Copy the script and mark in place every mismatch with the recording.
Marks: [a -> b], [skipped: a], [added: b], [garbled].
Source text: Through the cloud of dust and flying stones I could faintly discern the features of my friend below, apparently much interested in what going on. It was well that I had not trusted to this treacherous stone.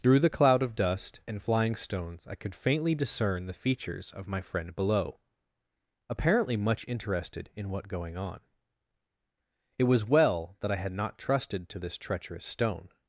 Through the cloud of dust and flying stones I could faintly discern the features of my friend below, apparently much interested in what going on. It was well that I had not trusted to this treacherous stone.